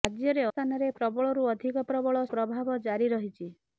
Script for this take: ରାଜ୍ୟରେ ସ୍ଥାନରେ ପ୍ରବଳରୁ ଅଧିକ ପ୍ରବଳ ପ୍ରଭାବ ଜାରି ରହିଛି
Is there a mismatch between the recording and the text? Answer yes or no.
no